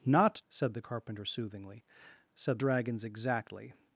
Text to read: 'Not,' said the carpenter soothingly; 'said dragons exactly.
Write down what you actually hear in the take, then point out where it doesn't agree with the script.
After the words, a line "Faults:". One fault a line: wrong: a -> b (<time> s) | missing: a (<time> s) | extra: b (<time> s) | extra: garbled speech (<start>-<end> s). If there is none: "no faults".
'Not,' said the carpenter soothingly; 'said dragons exactly.
Faults:
no faults